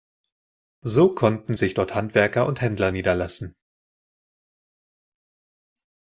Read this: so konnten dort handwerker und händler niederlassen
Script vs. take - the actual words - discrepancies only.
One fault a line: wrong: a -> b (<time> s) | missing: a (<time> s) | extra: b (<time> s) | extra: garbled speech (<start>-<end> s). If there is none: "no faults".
extra: sich (1.5 s)